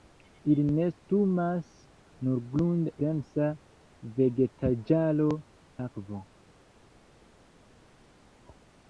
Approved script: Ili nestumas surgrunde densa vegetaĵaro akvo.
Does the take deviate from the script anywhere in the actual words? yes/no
no